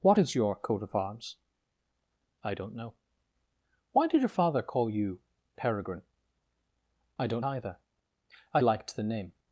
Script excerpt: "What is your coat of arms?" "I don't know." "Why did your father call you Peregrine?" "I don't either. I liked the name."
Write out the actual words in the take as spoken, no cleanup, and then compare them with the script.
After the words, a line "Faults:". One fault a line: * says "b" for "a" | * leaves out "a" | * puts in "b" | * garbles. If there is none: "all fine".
"What is your coat of arms?" "I don't know." "Why did your father call you Peregrine?" "I don't either. I liked the name."
Faults:
all fine